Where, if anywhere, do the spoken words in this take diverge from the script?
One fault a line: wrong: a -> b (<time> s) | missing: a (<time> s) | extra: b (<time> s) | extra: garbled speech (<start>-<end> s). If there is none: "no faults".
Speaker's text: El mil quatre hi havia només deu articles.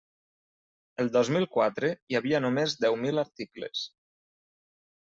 extra: dos (1.2 s)
extra: mil (3.0 s)